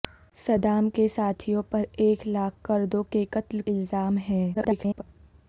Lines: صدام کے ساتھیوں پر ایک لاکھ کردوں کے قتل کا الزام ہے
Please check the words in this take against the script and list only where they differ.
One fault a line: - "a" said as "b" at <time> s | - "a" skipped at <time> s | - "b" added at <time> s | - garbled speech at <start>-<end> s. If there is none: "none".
- "کا" skipped at 3.6 s
- garbled speech at 4.5-5.0 s